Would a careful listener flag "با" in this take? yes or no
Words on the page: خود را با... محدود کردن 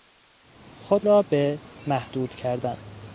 yes